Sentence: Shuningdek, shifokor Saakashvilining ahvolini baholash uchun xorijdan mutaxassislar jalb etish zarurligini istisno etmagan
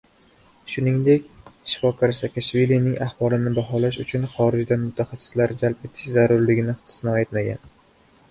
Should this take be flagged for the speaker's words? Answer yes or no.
no